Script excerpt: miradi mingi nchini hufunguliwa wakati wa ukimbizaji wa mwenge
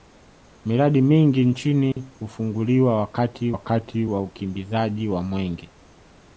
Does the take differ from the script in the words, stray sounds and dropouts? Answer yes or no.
yes